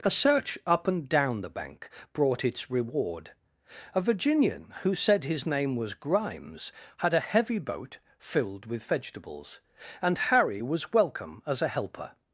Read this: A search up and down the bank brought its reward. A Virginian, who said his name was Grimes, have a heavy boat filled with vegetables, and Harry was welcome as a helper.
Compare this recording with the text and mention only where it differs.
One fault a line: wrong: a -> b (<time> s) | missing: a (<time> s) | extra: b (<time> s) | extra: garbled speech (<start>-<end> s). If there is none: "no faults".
wrong: have -> had (7.0 s)